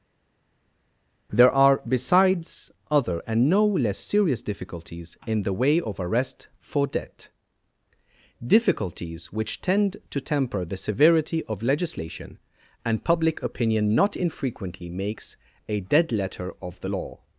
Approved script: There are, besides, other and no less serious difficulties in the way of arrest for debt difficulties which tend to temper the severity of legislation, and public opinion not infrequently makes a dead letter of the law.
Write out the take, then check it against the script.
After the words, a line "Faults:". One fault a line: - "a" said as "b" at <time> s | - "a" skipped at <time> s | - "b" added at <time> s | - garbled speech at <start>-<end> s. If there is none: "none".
There are, besides, other and no less serious difficulties in the way of arrest for debt difficulties which tend to temper the severity of legislation, and public opinion not infrequently makes a dead letter of the law.
Faults:
none